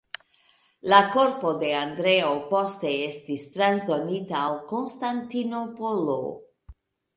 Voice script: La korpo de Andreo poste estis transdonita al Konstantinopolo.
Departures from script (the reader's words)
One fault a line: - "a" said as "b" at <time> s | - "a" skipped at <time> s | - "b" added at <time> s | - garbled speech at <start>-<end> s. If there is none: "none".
none